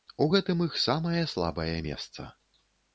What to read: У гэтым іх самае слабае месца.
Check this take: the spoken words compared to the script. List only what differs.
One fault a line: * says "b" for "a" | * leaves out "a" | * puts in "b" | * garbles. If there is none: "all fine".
all fine